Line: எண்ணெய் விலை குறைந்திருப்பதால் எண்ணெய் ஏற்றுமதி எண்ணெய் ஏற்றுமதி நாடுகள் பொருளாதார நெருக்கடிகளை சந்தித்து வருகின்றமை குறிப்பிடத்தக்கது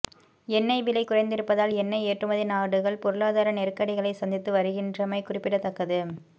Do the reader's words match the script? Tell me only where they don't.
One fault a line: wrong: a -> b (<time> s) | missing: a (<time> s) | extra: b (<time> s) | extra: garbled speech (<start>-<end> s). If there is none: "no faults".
missing: எண்ணெய் ஏற்றுமதி (2.4 s)